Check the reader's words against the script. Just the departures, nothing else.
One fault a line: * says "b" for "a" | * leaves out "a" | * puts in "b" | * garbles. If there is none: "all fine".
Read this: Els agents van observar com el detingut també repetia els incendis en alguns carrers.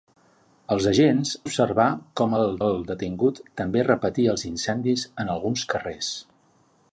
* leaves out "van"
* puts in "el"